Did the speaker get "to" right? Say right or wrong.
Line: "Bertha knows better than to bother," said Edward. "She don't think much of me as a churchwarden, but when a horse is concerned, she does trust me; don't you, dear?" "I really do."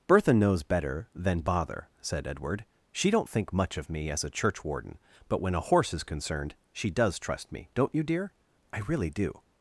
wrong